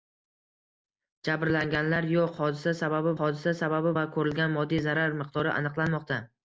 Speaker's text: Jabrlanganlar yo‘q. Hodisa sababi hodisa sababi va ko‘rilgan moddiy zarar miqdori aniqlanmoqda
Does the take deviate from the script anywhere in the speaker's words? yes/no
no